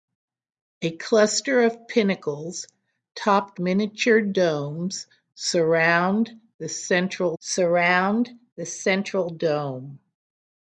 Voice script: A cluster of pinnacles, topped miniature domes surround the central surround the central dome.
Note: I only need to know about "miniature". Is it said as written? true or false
true